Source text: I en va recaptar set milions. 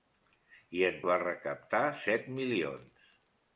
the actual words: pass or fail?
pass